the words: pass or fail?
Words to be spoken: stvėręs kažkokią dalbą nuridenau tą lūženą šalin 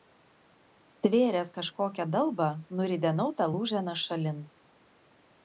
pass